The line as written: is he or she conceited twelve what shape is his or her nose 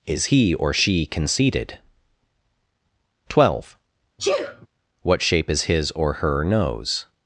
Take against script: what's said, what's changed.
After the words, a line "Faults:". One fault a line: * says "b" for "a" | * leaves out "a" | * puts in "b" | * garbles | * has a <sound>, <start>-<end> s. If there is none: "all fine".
is he or she conceited twelve what shape is his or her nose
Faults:
* has a sneeze, 4.2-4.7 s